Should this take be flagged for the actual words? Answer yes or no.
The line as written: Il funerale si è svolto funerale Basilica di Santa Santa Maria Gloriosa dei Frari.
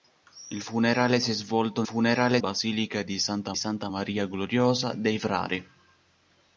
no